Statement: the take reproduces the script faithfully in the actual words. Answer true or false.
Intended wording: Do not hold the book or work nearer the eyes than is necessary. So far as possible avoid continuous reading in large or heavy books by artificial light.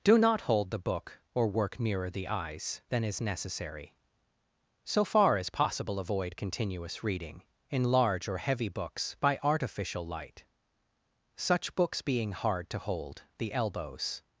false